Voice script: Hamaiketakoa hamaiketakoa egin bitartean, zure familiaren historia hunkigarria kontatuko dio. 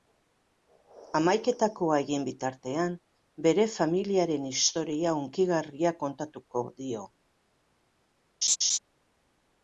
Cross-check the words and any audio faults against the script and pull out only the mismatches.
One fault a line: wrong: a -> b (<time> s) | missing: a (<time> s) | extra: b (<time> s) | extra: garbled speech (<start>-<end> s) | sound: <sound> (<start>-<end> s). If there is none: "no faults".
missing: hamaiketakoa (2.0 s)
wrong: zure -> bere (3.5 s)
sound: laugh (8.4-8.8 s)